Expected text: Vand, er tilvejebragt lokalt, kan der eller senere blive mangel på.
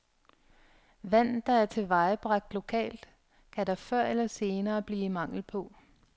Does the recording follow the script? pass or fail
fail